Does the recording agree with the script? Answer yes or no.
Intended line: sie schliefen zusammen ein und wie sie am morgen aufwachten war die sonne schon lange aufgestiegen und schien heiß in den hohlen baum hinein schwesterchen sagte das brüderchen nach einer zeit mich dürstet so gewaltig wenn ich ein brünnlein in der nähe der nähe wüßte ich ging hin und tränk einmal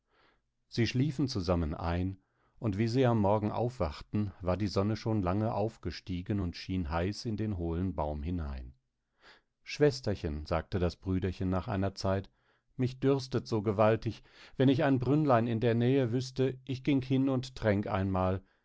no